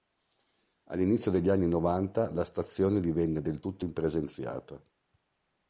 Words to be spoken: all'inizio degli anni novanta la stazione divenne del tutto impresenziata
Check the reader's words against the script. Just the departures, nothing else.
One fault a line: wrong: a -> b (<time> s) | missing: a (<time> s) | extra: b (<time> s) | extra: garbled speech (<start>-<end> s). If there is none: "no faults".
no faults